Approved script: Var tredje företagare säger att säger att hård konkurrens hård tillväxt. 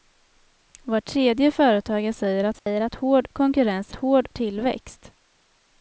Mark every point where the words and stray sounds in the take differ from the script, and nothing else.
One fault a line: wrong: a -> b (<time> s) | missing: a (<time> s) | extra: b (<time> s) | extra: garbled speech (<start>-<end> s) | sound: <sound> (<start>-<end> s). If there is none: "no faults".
sound: dropout (2.6-2.7 s)